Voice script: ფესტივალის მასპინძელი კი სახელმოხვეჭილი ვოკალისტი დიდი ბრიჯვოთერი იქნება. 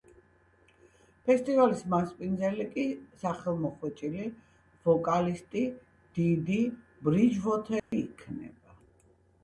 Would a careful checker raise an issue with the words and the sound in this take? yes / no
yes